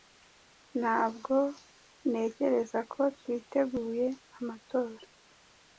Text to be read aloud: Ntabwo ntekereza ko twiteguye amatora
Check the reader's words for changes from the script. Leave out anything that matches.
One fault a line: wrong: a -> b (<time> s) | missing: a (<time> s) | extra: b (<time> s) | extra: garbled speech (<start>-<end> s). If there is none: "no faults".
no faults